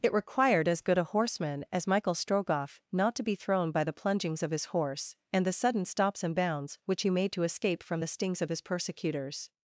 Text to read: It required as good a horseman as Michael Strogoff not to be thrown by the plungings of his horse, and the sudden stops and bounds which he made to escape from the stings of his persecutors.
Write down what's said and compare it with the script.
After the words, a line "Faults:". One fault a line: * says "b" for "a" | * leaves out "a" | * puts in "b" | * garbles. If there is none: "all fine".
It required as good a horseman as Michael Strogoff not to be thrown by the plungings of his horse, and the sudden stops and bounds which he made to escape from the stings of his persecutors.
Faults:
all fine